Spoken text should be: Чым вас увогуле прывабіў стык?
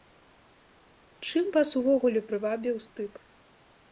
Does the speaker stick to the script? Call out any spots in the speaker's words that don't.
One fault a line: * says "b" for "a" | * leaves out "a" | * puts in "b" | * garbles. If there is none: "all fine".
all fine